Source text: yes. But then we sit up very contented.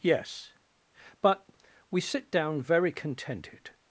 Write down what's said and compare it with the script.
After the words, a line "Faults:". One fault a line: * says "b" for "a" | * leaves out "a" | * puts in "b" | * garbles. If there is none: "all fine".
yes. But we sit down very contented.
Faults:
* leaves out "then"
* says "down" for "up"